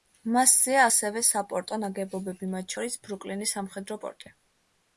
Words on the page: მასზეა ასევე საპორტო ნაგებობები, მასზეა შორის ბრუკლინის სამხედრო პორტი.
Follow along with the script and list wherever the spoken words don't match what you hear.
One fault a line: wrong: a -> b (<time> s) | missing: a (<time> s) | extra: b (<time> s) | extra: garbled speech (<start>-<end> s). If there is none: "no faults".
wrong: მასზეა -> მათ (2.6 s)